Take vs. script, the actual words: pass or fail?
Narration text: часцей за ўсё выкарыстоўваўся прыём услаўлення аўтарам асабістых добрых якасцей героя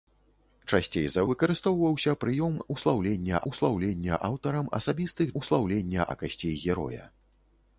fail